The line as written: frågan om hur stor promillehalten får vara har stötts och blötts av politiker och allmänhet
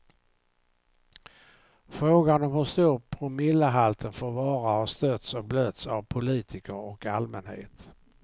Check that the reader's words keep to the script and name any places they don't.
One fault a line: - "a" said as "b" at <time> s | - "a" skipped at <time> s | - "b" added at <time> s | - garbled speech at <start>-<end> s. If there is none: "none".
none